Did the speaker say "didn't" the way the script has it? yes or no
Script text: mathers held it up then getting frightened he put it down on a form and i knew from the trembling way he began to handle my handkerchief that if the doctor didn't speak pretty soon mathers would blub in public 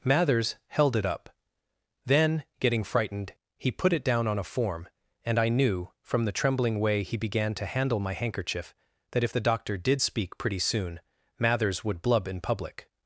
no